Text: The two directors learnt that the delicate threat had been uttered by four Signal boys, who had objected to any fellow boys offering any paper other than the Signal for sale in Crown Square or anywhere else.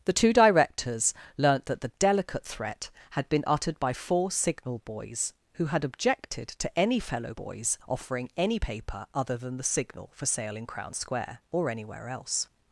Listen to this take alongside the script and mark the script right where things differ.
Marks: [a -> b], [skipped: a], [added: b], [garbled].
The two directors learnt that the delicate threat had been uttered by four Signal boys, who had objected to any fellow boys offering any paper other than the Signal for sale in Crown Square or anywhere else.